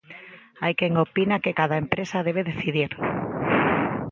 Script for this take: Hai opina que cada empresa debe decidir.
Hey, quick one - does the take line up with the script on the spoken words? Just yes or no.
no